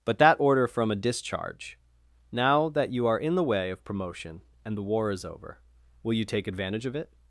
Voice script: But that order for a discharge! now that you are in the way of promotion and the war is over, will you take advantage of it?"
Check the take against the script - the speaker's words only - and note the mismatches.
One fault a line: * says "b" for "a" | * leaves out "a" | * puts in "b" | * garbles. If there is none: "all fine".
* says "from" for "for"